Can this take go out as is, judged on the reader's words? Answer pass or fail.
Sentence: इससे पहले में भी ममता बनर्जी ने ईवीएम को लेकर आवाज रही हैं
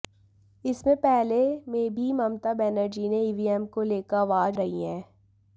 pass